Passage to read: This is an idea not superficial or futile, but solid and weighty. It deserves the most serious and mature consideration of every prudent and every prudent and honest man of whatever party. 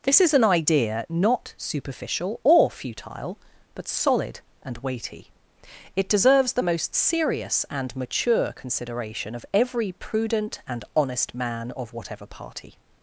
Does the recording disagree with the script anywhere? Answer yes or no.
yes